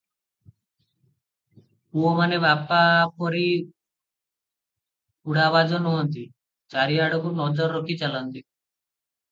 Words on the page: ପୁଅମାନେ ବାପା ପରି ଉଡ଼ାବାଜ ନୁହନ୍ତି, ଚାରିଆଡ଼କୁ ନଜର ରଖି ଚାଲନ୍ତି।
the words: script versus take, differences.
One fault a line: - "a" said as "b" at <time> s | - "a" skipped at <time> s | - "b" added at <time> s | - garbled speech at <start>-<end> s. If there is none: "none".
none